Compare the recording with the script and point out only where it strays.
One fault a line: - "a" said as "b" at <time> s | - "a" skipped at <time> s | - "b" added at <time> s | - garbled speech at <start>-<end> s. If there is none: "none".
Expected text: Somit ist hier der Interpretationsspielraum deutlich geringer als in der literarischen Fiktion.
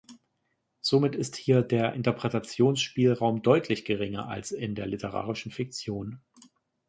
none